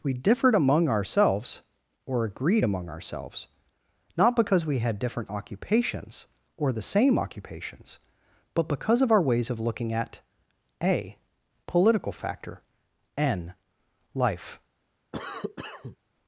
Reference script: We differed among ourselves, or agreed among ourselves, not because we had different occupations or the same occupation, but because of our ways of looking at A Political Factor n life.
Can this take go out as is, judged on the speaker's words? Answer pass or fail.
fail